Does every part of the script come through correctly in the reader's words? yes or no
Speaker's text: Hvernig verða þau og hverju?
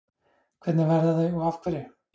no